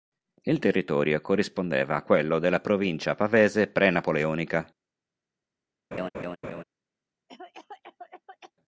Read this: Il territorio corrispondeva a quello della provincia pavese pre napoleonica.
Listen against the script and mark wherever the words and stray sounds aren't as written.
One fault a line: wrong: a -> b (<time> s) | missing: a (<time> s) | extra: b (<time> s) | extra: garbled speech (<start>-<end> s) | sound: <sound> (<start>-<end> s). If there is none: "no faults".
sound: laugh (5.9-6.6 s)
sound: cough (7.3-8.5 s)